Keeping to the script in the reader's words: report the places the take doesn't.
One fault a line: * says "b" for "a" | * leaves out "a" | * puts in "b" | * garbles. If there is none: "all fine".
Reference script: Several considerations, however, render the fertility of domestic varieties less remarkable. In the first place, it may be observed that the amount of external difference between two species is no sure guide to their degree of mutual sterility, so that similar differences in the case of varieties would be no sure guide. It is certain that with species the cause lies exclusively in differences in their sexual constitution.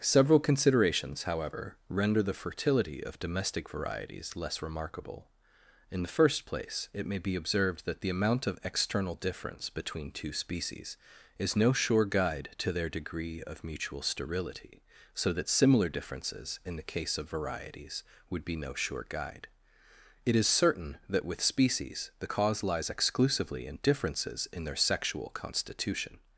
all fine